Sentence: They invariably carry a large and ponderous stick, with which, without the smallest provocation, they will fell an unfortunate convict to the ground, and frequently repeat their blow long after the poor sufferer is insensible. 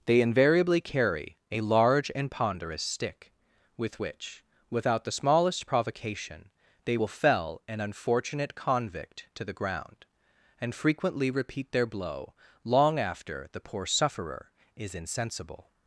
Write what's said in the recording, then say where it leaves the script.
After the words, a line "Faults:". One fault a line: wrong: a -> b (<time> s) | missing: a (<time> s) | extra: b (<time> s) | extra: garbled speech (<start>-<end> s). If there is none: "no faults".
They invariably carry a large and ponderous stick, with which, without the smallest provocation, they will fell an unfortunate convict to the ground, and frequently repeat their blow long after the poor sufferer is insensible.
Faults:
no faults